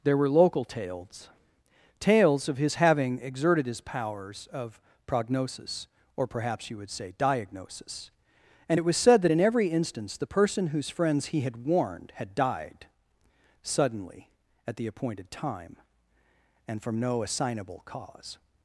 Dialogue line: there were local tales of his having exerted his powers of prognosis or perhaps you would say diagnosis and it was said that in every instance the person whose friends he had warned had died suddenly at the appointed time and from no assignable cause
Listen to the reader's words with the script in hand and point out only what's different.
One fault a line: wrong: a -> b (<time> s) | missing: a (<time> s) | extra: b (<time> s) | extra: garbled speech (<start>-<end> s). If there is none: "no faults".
extra: tales (2.0 s)